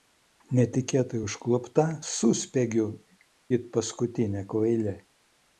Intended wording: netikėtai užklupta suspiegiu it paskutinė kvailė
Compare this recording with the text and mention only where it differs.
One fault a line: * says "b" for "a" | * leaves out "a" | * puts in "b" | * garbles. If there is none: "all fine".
all fine